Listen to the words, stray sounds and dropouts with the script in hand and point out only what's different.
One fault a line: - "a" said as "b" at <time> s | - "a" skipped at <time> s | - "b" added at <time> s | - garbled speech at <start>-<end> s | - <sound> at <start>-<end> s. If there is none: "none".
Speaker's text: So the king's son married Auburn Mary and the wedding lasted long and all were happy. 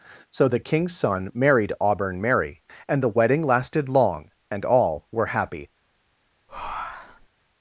- breath at 6.5-7.3 s